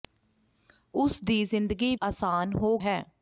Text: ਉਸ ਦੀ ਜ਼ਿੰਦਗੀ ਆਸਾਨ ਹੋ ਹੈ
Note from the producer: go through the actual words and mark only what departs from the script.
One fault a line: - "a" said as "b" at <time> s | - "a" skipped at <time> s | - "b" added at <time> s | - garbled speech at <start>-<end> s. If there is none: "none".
none